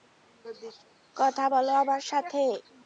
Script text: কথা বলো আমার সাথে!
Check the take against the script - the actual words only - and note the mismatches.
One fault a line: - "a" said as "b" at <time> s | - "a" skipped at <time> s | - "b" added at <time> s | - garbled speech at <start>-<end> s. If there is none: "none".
none